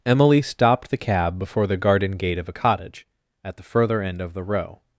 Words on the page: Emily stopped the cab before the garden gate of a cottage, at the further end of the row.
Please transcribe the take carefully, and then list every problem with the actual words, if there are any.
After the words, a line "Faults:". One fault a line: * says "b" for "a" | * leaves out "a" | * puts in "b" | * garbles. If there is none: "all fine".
Emily stopped the cab before the garden gate of a cottage, at the further end of the row.
Faults:
all fine